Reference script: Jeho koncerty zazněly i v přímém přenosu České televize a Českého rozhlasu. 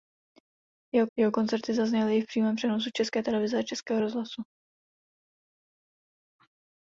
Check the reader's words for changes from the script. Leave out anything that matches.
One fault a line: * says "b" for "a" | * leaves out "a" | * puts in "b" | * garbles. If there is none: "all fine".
* puts in "jeho"